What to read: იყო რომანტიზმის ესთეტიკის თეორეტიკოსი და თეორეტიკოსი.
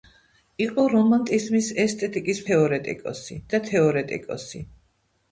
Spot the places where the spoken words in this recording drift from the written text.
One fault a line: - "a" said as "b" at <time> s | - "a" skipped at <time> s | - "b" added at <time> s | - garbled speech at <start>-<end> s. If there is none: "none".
none